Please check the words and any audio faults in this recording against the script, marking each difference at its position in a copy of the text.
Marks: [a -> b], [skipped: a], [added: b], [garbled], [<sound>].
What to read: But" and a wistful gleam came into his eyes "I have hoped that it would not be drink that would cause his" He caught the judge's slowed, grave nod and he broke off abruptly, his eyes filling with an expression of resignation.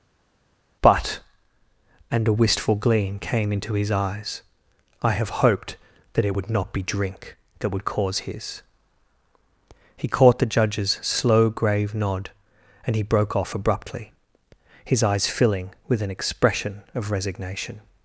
But" and a wistful gleam came into his eyes "I have hoped that it would not be drink that would cause his" He caught the judge's [slowed, -> slow] grave nod and he broke off abruptly, his eyes filling with an expression of resignation.